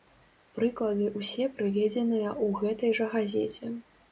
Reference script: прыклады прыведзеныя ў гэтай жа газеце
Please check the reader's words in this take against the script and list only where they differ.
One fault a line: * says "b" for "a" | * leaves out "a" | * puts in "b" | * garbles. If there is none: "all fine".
* puts in "ўсе"